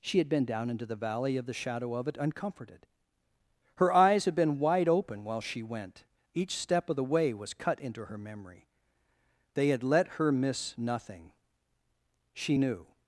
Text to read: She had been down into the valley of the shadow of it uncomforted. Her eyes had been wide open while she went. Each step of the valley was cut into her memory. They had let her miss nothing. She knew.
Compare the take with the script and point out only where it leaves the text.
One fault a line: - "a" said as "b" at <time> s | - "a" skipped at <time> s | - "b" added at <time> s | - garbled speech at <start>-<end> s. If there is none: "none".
- "valley" said as "way" at 7.0 s